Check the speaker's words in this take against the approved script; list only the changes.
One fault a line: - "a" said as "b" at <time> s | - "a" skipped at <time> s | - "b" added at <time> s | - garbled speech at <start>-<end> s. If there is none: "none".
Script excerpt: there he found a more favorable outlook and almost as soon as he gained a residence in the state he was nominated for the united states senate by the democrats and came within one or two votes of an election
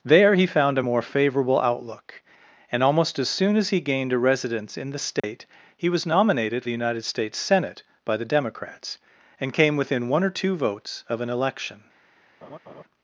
- "for" skipped at 6.6 s